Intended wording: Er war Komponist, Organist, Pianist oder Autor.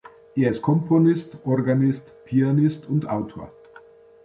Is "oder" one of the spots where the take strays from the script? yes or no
yes